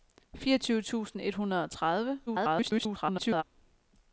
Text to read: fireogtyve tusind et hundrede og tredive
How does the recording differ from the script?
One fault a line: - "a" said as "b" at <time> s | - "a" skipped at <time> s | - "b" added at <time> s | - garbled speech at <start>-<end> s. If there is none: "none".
- garbled speech at 2.3-3.4 s